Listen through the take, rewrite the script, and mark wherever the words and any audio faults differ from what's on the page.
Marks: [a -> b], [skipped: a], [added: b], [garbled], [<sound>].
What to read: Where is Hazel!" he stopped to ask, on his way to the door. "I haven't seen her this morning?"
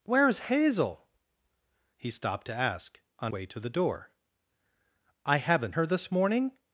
Where is Hazel!" he stopped to ask, on [skipped: his] way to the door. "I haven't [skipped: seen] her this morning?"